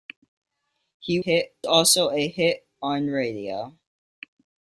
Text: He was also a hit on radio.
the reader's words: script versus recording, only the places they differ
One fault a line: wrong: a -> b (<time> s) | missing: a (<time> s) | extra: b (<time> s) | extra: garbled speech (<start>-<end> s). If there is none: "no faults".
wrong: was -> hit (1.2 s)